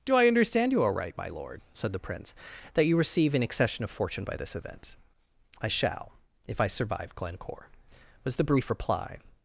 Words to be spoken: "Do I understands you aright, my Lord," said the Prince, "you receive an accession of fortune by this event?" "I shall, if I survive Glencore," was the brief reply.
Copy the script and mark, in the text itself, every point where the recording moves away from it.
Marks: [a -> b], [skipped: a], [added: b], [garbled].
"Do I [understands -> understand] you aright, my Lord," said the Prince, [added: that] "you receive an accession of fortune by this event?" "I shall, if I survive Glencore," was the brief reply.